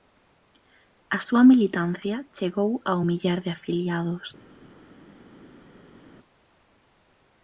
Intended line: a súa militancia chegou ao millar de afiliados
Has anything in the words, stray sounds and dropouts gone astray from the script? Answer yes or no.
no